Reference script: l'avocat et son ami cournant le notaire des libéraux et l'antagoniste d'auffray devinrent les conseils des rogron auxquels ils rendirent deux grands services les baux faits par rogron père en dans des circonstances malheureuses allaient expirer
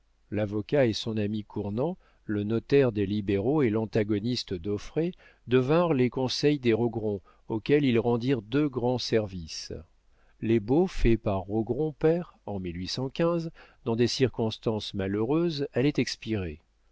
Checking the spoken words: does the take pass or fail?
pass